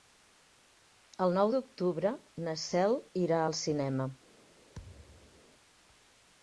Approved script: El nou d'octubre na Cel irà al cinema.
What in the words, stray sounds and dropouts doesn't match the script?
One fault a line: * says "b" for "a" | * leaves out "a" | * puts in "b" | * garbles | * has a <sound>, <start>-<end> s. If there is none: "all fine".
* has a thud, 4.7-5.4 s